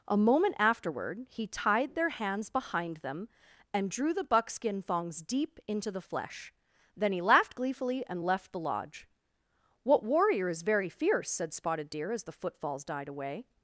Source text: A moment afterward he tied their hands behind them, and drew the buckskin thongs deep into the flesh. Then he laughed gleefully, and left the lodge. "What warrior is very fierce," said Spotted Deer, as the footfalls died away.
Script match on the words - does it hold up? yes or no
yes